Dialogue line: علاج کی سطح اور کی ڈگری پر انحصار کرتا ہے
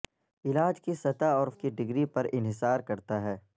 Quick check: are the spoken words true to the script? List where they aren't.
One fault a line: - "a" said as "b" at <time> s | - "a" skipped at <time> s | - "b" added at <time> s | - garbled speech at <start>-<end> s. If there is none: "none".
none